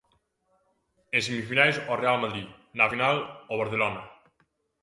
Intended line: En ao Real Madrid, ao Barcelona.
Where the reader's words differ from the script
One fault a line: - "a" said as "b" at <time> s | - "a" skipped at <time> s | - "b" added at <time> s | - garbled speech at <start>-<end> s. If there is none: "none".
- "semifinais" added at 1.3 s
- "na final" added at 2.8 s